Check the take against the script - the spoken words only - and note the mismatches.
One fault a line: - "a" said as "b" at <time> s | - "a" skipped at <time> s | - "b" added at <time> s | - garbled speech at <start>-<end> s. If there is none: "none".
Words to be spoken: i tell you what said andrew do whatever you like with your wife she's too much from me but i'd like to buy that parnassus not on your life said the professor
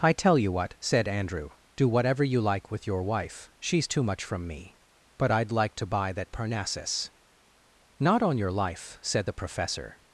none